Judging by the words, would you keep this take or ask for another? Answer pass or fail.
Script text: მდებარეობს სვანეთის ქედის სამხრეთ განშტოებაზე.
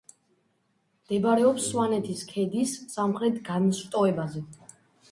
pass